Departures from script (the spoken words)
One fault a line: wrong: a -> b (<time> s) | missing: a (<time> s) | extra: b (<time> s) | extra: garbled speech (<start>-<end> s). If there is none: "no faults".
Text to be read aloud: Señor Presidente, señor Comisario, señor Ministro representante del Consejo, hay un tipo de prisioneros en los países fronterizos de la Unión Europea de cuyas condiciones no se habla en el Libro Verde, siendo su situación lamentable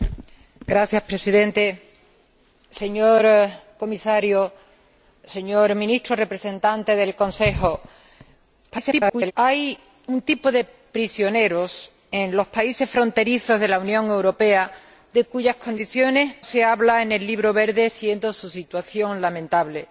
extra: garbled speech (8.7-9.3 s)
missing: no (16.3 s)